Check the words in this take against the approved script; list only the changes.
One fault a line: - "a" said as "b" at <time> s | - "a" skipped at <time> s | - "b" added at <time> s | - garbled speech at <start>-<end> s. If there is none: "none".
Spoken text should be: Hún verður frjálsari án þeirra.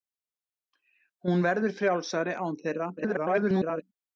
- garbled speech at 3.0-3.8 s